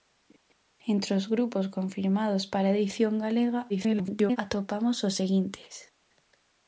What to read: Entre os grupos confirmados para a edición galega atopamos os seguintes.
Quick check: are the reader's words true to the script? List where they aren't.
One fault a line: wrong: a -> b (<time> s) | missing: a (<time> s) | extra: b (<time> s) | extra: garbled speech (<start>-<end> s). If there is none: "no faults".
extra: garbled speech (3.7-4.4 s)